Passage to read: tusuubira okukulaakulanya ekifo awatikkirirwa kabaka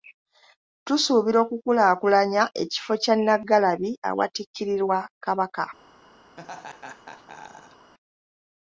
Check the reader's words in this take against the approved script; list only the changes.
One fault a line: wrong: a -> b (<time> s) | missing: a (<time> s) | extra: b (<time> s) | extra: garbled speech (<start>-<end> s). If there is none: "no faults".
extra: kya nnaggalabi (3.0 s)